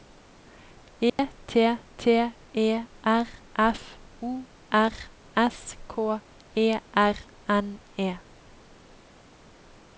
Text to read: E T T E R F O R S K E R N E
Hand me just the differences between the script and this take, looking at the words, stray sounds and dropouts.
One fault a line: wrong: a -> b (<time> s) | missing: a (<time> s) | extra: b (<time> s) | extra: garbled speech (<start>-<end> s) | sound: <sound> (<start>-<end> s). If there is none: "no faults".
sound: dropout (1.1-1.2 s)